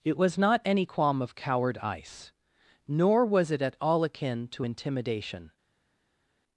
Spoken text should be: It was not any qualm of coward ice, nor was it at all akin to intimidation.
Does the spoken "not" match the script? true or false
true